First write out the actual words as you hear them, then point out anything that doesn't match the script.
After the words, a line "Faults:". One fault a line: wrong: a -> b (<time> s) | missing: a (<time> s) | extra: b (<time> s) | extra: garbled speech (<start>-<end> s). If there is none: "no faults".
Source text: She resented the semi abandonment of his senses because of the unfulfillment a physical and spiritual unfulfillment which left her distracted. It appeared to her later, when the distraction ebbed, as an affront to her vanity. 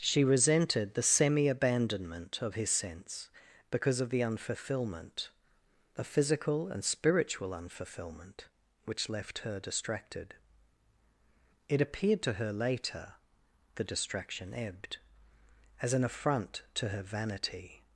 She resented the semi abandonment of his sense because of the unfulfillment a physical and spiritual unfulfillment which left her distracted. It appeared to her later, the distraction ebbed, as an affront to her vanity.
Faults:
wrong: senses -> sense (2.7 s)
missing: when (13.1 s)